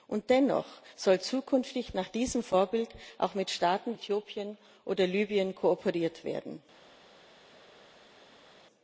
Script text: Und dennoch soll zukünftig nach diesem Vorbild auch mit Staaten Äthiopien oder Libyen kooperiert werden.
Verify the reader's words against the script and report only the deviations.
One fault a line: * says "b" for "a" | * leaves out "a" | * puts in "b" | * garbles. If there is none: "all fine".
all fine